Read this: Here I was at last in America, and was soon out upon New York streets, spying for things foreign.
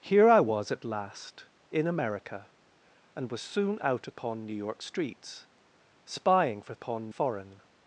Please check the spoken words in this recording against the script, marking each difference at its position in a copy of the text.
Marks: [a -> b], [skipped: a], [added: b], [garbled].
Here I was at last in America, and was soon out upon New York streets, spying for [things -> upon] foreign.